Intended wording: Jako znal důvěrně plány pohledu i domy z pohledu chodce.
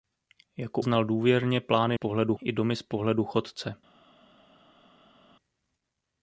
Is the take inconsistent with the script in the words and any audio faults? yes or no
no